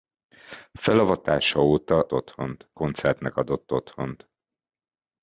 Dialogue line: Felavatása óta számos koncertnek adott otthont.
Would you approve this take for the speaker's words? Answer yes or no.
no